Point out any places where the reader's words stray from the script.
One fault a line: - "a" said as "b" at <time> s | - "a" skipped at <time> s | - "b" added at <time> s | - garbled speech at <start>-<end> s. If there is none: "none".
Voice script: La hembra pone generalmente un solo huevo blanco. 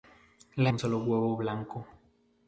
- "hembra pone generalmente" skipped at 0.7 s